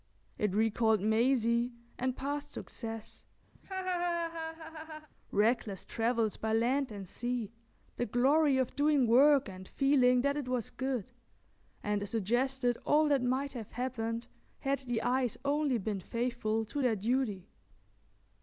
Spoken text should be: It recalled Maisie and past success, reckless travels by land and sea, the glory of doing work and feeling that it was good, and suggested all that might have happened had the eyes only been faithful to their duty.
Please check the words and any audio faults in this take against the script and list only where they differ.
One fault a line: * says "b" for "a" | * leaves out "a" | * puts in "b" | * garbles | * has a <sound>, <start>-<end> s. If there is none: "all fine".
* has a laugh, 3.6-5.1 s